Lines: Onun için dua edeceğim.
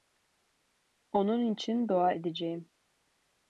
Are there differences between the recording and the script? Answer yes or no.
no